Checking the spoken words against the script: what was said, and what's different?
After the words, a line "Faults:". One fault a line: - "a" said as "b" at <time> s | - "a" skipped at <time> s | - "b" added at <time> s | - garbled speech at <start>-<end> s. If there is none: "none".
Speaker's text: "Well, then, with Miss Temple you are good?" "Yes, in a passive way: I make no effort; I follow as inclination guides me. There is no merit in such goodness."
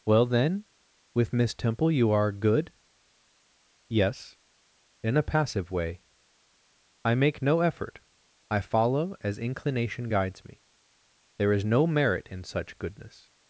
"Well, then, with Miss Temple you are good?" "Yes, in a passive way: I make no effort; I follow as inclination guides me. There is no merit in such goodness."
Faults:
none